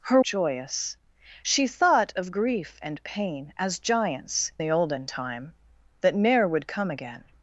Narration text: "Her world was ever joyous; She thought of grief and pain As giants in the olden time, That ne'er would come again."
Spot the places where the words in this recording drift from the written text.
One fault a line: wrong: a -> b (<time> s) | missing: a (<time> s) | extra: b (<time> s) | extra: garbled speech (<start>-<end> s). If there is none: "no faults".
missing: world was ever (0.2 s)
missing: in (4.5 s)